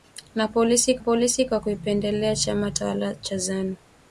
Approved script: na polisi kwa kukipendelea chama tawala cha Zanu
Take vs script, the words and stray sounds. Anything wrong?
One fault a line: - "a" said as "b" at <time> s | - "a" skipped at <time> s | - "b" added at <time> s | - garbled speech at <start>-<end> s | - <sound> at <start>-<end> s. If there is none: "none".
- "polisi" added at 1.0 s